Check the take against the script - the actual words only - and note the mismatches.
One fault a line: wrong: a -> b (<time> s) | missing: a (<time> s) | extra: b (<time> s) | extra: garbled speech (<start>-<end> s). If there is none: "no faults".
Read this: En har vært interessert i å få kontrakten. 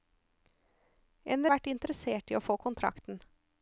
no faults